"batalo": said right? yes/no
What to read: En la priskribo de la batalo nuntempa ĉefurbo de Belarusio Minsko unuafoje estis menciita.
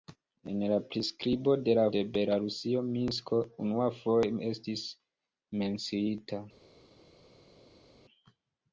no